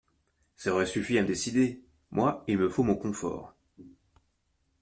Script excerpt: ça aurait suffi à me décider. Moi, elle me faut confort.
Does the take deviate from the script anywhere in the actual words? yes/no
yes